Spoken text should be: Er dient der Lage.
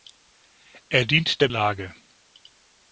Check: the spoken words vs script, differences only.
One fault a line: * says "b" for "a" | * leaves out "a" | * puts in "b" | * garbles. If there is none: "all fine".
all fine